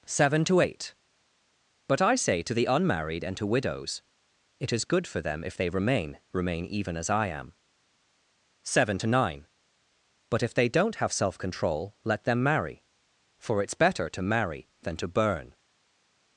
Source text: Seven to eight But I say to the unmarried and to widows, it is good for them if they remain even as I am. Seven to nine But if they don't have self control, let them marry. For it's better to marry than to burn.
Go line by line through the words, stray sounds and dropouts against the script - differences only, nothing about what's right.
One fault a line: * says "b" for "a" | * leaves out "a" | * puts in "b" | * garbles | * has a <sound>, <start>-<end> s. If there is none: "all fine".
* puts in "remain"